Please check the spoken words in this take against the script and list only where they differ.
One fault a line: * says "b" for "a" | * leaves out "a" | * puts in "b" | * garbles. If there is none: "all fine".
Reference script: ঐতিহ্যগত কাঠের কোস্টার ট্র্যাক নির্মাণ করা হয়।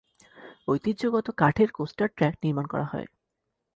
all fine